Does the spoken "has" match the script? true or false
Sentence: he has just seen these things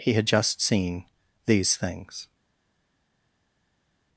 false